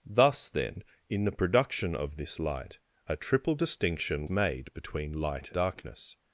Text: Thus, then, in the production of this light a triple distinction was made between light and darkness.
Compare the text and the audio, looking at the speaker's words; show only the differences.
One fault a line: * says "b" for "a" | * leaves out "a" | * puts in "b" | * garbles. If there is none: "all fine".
* leaves out "was"
* leaves out "and"